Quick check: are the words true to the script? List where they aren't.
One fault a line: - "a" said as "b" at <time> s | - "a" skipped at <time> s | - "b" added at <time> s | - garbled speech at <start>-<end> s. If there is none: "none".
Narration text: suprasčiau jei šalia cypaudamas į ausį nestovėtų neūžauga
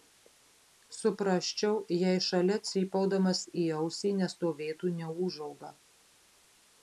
none